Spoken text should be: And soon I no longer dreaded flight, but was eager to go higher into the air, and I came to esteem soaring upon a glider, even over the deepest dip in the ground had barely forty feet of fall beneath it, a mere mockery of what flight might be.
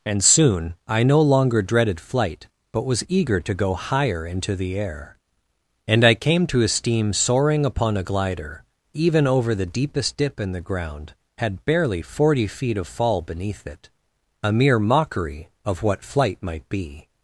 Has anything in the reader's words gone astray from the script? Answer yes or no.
no